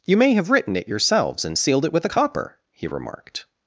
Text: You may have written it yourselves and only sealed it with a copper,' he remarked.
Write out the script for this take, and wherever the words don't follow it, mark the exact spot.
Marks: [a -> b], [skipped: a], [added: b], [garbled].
You may have written it yourselves and [skipped: only] sealed it with a copper,' he remarked.